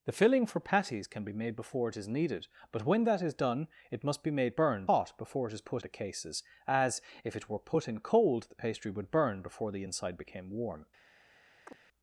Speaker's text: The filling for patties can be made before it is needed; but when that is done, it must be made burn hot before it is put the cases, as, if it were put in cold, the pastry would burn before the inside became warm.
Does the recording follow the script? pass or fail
pass